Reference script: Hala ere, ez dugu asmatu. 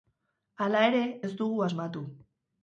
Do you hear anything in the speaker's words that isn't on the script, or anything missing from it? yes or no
no